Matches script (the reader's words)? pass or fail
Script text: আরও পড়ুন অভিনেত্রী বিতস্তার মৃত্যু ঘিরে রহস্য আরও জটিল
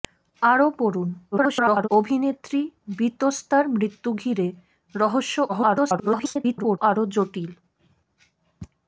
fail